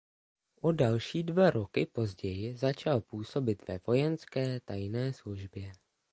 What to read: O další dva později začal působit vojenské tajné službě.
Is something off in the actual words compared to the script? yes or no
yes